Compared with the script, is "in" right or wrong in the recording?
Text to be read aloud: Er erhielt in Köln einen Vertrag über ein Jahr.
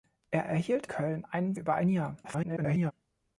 wrong